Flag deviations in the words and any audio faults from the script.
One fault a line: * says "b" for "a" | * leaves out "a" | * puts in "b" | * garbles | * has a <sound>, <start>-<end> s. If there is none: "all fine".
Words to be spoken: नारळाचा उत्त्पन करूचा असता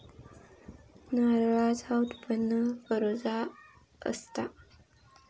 all fine